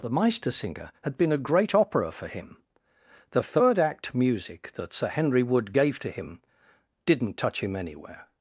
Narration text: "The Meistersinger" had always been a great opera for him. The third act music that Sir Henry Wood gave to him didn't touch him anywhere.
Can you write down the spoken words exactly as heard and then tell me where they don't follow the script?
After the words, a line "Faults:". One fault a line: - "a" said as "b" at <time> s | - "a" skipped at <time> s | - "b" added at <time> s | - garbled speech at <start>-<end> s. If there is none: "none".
"The Meistersinger" had been a great opera for him. The third act music that Sir Henry Wood gave to him didn't touch him anywhere.
Faults:
- "always" skipped at 1.1 s